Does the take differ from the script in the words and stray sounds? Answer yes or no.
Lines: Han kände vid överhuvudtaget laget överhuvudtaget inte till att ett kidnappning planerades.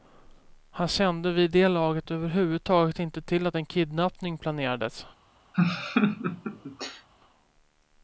yes